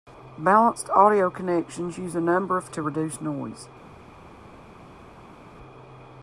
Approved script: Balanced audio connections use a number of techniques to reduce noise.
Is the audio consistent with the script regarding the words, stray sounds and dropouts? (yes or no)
no